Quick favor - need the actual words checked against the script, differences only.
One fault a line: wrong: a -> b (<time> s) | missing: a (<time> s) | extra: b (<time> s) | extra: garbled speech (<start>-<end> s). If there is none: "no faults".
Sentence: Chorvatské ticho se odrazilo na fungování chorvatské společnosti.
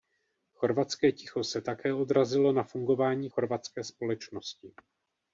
extra: také (1.6 s)